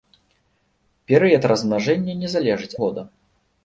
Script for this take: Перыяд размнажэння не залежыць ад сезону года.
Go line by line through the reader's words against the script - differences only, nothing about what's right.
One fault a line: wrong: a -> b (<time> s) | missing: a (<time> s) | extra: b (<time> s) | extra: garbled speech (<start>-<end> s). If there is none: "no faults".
missing: ад сезону (2.7 s)